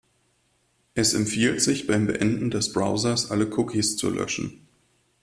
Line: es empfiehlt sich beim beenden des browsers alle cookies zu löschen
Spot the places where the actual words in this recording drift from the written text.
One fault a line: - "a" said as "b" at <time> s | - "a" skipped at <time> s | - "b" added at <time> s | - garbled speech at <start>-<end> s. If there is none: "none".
none